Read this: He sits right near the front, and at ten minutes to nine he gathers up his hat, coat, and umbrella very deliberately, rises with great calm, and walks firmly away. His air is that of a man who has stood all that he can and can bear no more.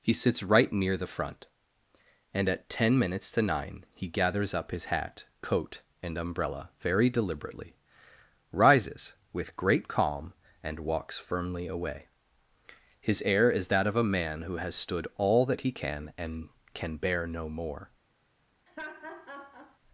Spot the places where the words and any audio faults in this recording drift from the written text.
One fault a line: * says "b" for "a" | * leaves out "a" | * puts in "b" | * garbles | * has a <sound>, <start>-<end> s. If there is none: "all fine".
* has a laugh, 18.7-19.8 s